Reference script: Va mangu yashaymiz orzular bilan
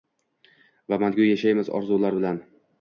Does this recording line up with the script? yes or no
yes